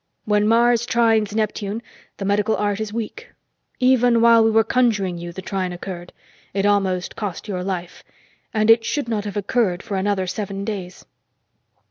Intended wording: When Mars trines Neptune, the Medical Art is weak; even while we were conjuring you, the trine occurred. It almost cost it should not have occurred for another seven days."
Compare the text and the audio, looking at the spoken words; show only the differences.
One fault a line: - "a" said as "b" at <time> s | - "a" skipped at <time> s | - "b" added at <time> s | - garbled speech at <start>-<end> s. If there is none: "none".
- "your life And" added at 7.5 s